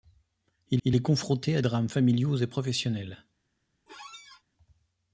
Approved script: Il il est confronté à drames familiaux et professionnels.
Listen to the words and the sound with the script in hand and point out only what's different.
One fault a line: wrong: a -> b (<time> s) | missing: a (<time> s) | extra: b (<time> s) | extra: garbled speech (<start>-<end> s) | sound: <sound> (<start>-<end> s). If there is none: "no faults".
sound: squeak (3.9-4.4 s)